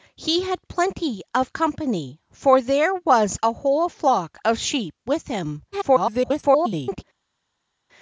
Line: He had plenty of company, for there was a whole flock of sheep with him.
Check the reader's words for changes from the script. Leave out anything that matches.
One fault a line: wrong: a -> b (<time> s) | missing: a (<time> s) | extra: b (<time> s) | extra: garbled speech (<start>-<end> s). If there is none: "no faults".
extra: garbled speech (5.7-7.0 s)